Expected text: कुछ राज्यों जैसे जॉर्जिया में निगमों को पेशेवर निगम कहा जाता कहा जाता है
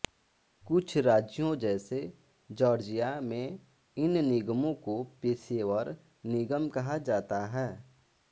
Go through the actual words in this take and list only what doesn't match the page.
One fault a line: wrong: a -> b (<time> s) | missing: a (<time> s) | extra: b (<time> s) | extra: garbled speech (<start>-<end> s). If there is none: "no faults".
extra: इन (4.0 s)
missing: कहा जाता (7.5 s)